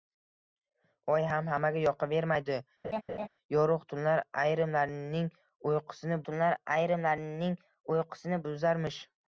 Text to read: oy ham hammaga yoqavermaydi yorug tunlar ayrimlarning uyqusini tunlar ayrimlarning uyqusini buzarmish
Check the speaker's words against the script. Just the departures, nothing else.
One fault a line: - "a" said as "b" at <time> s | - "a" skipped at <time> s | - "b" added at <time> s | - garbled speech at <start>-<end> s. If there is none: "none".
none